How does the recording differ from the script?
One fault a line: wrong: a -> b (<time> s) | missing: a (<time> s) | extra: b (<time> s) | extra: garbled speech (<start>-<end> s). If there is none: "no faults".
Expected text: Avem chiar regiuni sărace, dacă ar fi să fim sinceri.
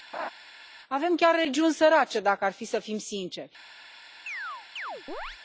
no faults